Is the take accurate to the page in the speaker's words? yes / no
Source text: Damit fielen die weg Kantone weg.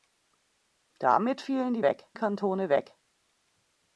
yes